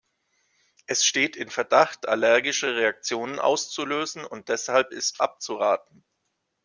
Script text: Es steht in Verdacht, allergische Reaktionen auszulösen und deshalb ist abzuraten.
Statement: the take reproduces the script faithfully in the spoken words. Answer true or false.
true